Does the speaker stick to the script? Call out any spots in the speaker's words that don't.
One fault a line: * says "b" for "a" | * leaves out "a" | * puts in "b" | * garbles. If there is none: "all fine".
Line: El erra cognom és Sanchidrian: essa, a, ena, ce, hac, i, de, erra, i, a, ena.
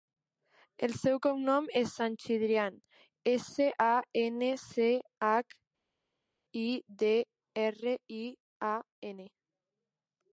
* says "seu" for "erra"